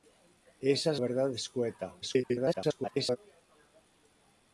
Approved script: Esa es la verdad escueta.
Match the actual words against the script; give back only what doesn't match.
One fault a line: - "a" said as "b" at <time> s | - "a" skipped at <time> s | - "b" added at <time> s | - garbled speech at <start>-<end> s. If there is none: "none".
- "la" skipped at 1.0 s
- garbled speech at 2.0-3.2 s